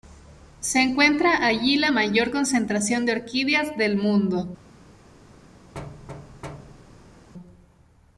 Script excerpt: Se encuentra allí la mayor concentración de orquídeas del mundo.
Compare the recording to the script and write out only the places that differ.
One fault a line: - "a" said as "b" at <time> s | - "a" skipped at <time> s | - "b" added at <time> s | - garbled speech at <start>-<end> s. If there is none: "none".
none